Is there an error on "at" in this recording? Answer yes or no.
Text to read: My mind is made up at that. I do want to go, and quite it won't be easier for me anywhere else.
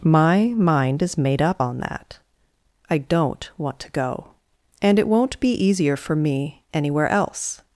yes